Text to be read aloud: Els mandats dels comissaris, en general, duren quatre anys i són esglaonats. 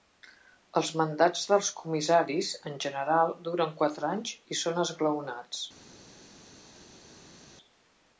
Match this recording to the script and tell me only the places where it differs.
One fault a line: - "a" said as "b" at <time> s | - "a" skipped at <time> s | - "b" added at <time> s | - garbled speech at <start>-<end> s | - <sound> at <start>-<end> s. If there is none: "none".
none